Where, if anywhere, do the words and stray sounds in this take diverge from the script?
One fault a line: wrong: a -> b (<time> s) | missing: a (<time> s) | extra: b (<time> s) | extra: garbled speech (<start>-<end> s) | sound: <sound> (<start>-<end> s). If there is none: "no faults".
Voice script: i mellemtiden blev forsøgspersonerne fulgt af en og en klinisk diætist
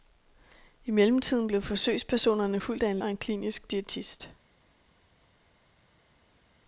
no faults